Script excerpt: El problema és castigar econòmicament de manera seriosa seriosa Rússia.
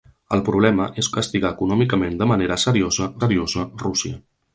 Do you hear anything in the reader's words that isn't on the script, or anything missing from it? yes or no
no